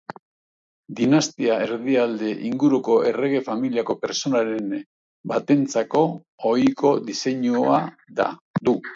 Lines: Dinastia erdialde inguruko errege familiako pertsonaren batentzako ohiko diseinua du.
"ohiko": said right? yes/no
yes